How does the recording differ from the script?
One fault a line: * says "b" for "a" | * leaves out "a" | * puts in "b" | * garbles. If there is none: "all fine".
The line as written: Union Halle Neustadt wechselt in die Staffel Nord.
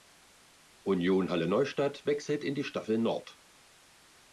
all fine